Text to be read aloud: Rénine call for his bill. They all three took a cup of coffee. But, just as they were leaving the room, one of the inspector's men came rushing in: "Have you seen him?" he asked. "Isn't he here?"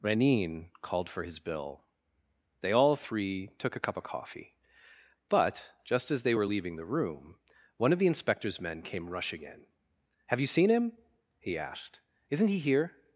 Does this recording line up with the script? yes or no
no